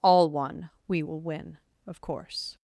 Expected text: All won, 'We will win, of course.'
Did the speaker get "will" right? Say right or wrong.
right